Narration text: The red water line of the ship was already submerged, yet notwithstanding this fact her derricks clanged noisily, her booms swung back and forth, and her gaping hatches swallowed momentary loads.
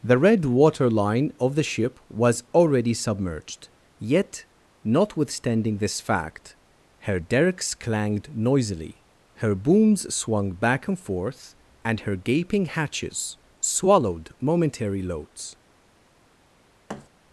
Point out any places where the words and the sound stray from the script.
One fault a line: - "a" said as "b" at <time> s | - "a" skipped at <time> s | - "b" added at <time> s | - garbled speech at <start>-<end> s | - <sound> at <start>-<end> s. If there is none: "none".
- thud at 16.9-17.1 s